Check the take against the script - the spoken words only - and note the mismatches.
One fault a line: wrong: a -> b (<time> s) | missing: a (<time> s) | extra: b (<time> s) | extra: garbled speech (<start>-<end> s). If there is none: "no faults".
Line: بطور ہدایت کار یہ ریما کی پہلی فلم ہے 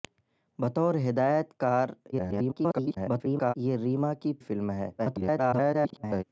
extra: garbled speech (2.1-3.5 s)
missing: پہلی (4.3 s)
extra: garbled speech (5.0-6.2 s)